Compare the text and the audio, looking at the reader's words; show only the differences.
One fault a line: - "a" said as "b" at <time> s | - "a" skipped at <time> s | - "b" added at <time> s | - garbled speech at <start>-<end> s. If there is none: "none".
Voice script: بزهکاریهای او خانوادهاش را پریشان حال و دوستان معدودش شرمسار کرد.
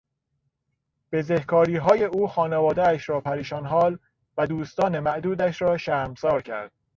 - "را" added at 5.6 s